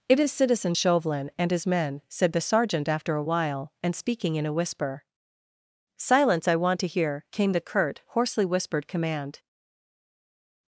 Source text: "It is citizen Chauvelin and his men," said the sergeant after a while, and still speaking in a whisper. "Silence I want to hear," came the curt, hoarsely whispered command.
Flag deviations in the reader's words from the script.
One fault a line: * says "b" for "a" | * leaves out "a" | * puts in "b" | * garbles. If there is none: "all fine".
* leaves out "still"